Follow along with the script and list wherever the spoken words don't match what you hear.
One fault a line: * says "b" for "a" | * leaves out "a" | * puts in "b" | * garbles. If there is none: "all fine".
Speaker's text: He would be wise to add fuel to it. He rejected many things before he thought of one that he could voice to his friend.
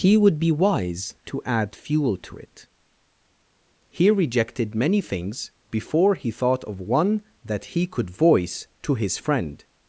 all fine